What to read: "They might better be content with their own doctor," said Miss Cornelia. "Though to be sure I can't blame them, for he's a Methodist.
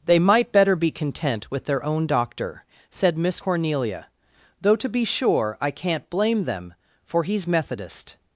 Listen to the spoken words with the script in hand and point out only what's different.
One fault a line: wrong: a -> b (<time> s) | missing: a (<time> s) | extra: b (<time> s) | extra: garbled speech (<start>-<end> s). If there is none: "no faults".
missing: a (7.5 s)